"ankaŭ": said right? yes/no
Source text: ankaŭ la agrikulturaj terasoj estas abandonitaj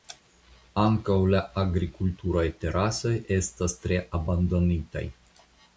yes